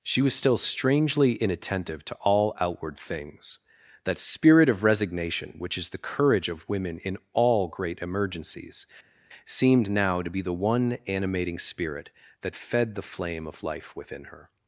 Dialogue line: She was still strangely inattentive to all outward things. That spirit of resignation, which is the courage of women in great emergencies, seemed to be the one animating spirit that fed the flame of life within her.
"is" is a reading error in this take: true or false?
false